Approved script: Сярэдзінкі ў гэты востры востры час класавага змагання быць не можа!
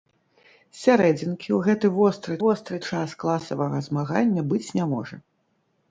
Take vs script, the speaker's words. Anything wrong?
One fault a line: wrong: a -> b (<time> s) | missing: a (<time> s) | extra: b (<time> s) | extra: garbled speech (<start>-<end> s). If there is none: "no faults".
no faults